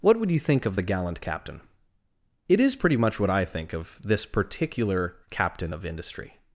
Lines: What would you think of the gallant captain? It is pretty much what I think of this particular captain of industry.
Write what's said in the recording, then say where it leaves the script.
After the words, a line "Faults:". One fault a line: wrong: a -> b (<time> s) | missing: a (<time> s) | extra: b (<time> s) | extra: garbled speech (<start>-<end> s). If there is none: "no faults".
What would you think of the gallant captain? It is pretty much what I think of this particular captain of industry.
Faults:
no faults